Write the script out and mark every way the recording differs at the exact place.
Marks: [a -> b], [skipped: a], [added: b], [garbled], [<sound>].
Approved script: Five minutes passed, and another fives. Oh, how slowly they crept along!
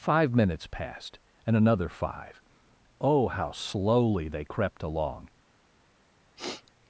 Five minutes passed, and another [fives. -> five] Oh, how slowly they crept along! [sniff]